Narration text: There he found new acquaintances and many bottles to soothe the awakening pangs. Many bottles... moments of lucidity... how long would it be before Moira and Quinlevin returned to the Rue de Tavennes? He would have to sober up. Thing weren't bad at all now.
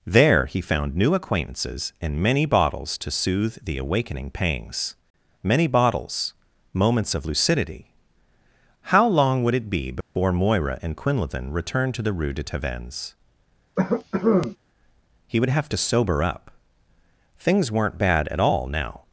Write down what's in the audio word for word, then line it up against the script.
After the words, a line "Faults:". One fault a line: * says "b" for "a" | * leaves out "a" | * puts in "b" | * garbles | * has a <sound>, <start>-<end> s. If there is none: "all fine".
There he found new acquaintances and many bottles to soothe the awakening pangs. Many bottles... moments of lucidity... how long would it be before Moira and Quinlevin returned to the Rue de Tavennes? He would have to sober up. Things weren't bad at all now.
Faults:
* has a dropout, 10.0-10.2 s
* has a cough, 13.8-14.6 s
* says "Things" for "Thing"